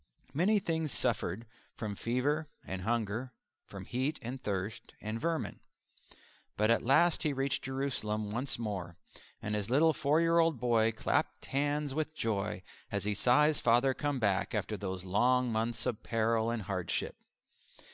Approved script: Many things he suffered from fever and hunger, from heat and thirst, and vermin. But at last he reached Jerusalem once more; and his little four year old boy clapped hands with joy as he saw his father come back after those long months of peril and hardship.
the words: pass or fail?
fail